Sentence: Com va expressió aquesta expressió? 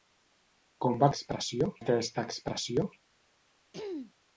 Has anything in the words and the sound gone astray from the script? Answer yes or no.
yes